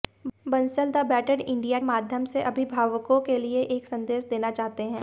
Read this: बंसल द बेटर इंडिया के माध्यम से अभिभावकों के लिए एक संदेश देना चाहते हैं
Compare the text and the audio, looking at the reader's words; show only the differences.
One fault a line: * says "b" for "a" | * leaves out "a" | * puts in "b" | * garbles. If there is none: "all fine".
* leaves out "के"